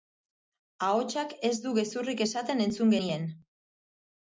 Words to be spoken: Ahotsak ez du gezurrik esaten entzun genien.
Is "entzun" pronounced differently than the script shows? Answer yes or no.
no